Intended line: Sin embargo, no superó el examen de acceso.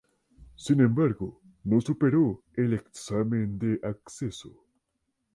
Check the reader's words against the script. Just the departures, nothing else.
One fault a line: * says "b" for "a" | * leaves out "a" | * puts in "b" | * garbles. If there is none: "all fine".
all fine